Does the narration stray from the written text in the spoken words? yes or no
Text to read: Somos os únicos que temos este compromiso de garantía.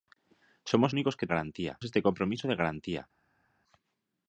yes